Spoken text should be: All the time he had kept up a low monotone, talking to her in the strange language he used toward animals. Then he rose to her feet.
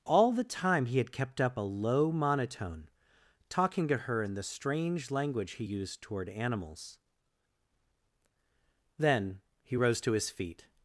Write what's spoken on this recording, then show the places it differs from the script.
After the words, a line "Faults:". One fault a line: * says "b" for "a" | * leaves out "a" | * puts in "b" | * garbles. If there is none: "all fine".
All the time he had kept up a low monotone, talking to her in the strange language he used toward animals. Then he rose to his feet.
Faults:
* says "his" for "her"